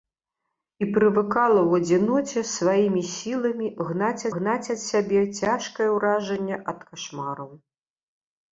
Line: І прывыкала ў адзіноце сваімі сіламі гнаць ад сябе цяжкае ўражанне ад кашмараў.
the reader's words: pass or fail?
fail